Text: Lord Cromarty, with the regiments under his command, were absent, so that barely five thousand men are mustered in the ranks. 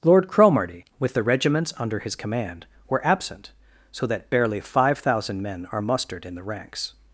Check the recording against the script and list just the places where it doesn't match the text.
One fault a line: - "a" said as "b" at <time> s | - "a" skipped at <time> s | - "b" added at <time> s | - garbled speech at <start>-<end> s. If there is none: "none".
none